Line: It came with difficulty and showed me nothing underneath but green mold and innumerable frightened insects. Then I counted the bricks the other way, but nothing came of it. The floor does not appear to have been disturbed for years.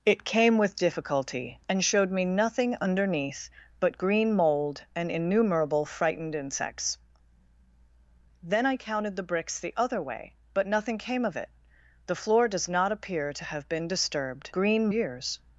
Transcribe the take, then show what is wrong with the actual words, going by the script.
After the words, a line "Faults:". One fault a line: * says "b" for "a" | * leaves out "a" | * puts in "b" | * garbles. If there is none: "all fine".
It came with difficulty and showed me nothing underneath but green mold and innumerable frightened insects. Then I counted the bricks the other way, but nothing came of it. The floor does not appear to have been disturbed green years.
Faults:
* says "green" for "for"